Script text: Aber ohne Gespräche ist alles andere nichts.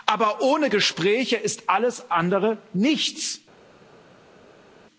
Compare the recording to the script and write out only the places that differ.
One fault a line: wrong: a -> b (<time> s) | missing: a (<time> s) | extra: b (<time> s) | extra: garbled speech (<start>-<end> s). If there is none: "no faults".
no faults